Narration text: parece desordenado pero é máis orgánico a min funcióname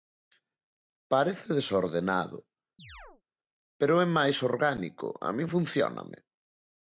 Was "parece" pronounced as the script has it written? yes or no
yes